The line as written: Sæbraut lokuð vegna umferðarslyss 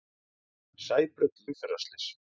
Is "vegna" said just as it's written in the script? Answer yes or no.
no